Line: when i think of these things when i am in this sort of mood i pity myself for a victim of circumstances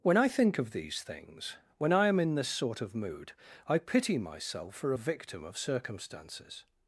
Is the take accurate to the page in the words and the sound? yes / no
yes